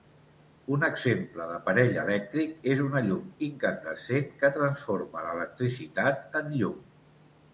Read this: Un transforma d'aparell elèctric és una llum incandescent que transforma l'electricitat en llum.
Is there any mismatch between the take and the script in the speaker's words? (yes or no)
yes